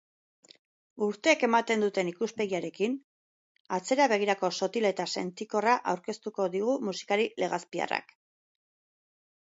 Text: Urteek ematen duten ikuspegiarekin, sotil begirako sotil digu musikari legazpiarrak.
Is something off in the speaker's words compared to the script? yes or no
yes